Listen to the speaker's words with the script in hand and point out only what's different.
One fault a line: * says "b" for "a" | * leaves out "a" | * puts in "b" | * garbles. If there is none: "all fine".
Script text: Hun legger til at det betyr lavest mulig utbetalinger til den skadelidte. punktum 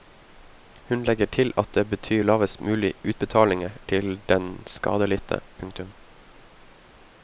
all fine